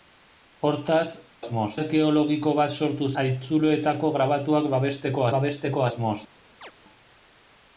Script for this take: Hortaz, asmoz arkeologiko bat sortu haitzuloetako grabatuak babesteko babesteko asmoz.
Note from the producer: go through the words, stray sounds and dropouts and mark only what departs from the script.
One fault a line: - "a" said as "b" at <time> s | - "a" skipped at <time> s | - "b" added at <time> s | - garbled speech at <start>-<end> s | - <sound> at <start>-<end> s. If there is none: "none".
- chirp at 6.6-6.7 s